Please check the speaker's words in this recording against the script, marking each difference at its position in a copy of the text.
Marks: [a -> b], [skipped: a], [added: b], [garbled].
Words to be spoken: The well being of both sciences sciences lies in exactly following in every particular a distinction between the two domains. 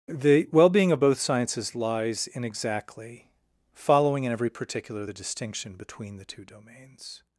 The well being of both sciences [skipped: sciences] lies in exactly following in every particular [a -> the] distinction between the two domains.